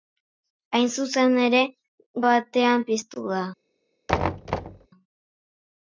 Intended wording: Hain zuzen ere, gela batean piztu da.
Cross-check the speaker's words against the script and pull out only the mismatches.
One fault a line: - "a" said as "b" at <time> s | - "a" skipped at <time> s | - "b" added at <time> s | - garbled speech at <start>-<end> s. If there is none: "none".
- "gela" skipped at 1.6 s